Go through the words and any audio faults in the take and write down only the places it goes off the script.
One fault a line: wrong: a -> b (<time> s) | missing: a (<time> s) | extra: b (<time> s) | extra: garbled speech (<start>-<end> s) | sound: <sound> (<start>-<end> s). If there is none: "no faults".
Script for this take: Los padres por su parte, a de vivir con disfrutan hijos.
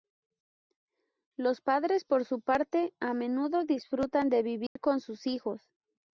extra: menudo disfrutan (3.1 s)
sound: dropout (4.7-4.8 s)
wrong: disfrutan -> sus (5.0 s)